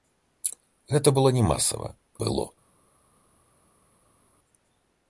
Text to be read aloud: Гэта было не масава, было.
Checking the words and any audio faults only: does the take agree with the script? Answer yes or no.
yes